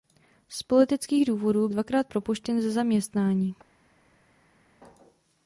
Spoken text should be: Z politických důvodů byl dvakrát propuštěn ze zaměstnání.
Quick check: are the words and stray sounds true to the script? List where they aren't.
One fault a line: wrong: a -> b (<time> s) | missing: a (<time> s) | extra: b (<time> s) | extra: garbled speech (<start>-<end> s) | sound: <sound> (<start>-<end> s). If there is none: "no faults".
missing: byl (1.7 s)